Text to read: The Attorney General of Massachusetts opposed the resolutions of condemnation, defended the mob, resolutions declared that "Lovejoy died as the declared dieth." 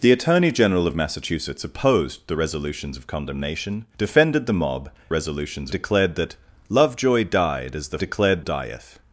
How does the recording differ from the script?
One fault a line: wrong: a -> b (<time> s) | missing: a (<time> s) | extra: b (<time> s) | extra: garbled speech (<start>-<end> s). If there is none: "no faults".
no faults